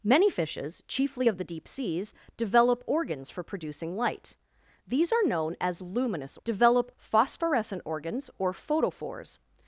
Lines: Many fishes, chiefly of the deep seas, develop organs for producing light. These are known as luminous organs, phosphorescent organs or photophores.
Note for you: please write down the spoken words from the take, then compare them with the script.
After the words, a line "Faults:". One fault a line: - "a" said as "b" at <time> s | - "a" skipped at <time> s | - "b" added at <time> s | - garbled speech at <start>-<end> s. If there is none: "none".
Many fishes, chiefly of the deep seas, develop organs for producing light. These are known as luminous develop, phosphorescent organs or photophores.
Faults:
- "organs" said as "develop" at 6.4 s